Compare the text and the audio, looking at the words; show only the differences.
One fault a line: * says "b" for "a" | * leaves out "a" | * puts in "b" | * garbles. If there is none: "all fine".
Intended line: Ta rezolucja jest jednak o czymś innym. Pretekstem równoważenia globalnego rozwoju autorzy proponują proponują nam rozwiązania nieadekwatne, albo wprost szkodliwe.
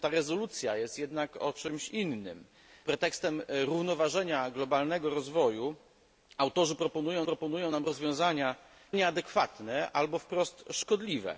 all fine